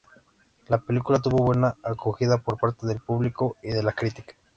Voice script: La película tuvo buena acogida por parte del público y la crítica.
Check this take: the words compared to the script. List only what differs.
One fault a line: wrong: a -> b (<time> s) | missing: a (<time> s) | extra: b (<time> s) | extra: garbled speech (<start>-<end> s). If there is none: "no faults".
extra: de (3.7 s)